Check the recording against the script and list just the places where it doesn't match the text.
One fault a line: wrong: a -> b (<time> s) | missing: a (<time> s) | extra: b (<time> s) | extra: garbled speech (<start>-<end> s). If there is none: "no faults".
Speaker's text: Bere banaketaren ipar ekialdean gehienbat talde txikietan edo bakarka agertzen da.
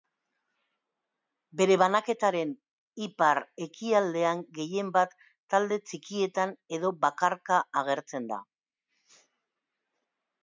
no faults